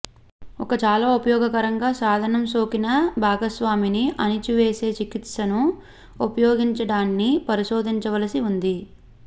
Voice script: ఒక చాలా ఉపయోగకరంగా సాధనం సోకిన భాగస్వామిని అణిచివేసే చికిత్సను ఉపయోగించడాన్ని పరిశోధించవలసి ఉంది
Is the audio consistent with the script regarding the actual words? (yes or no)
yes